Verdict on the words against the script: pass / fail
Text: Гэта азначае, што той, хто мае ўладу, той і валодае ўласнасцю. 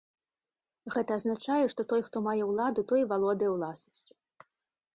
pass